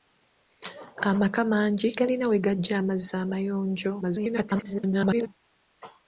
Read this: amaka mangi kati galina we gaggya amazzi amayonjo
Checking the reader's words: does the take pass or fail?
fail